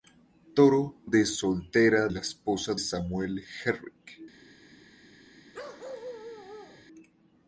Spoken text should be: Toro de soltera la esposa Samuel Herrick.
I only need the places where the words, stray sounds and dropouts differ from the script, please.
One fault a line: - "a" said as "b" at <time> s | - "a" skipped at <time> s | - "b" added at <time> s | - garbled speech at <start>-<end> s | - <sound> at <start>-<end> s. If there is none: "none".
- bark at 5.5-6.9 s